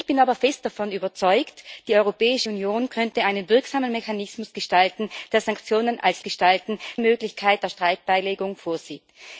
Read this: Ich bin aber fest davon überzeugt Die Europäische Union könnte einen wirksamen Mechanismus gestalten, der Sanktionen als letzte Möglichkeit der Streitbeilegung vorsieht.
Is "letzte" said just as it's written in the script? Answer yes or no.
no